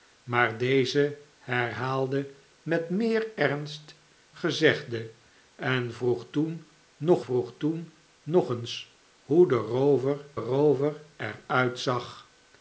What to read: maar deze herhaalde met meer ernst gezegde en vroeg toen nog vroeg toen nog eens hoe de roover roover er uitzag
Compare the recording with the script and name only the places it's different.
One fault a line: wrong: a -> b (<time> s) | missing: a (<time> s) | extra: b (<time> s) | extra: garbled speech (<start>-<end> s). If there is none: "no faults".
no faults